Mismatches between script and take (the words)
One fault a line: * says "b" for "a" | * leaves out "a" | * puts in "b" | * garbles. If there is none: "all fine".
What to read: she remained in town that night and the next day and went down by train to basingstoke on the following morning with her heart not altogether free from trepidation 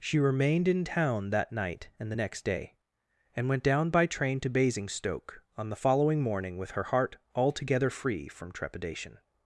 * leaves out "not"